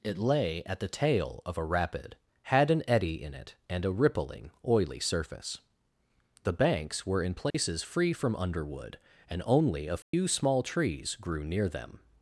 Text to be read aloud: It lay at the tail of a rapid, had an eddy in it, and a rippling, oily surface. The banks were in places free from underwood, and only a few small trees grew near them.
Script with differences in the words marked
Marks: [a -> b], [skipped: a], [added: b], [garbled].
It lay at the tail of a rapid, had an eddy in it, and a rippling, oily surface. The banks were in places free from underwood, and only a few small trees grew near them.